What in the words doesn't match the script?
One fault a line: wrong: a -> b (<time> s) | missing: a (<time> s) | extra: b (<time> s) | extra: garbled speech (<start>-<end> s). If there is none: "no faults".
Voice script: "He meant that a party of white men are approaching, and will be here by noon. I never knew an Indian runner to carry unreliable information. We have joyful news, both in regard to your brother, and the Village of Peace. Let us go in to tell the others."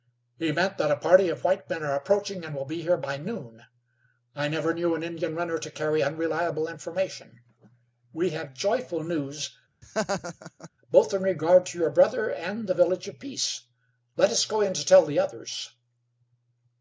no faults